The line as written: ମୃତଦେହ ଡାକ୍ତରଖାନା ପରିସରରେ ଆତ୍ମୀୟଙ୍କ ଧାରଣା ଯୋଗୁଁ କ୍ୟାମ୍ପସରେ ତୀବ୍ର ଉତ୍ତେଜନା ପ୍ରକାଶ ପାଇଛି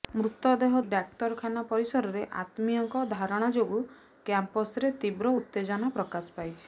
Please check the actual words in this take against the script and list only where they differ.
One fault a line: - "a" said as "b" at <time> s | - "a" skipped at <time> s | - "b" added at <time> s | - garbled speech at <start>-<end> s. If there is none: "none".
none